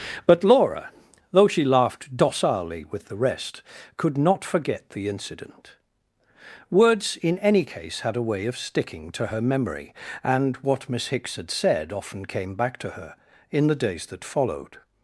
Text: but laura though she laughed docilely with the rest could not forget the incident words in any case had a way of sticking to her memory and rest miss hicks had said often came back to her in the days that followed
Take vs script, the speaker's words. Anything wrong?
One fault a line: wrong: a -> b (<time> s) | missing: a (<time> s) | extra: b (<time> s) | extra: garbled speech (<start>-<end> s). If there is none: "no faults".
wrong: rest -> what (10.6 s)